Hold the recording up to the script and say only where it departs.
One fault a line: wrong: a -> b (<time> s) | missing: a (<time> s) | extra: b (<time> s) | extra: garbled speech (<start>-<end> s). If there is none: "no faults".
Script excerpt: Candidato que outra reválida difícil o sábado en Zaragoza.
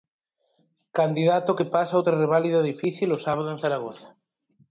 extra: pasa (1.8 s)